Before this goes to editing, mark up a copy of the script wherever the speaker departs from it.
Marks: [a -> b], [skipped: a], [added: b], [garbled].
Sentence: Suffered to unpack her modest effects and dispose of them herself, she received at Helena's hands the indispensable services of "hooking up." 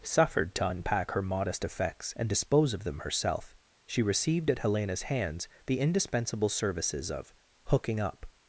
Suffered to unpack her modest effects and dispose of them herself, she received at Helena's hands the indispensable services of "hooking up."